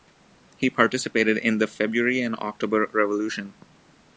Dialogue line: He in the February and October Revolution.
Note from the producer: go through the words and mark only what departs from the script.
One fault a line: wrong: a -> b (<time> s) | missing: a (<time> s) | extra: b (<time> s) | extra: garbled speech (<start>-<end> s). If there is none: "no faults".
extra: participated (0.7 s)